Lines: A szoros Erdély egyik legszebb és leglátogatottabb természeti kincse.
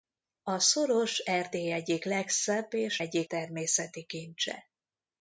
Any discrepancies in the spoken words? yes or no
yes